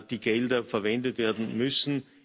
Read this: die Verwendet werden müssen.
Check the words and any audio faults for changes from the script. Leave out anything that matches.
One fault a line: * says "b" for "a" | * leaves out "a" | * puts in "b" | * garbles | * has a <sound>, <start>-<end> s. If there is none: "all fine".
* puts in "Gelder"